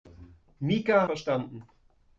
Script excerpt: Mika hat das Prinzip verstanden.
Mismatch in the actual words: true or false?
true